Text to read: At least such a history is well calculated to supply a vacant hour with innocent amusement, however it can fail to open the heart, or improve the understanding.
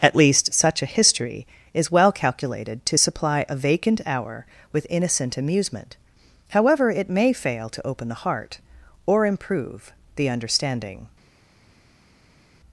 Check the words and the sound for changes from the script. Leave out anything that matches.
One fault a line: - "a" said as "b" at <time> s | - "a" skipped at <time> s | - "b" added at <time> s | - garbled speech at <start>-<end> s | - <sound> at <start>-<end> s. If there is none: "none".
- "can" said as "may" at 7.1 s